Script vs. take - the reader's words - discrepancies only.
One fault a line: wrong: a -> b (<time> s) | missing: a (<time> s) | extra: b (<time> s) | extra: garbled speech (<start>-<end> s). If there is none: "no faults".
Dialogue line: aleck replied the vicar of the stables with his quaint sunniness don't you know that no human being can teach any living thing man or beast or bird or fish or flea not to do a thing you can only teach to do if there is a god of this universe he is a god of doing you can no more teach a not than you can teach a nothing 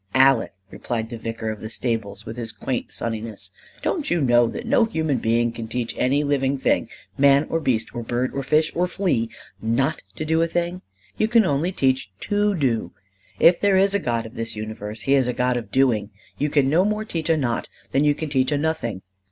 no faults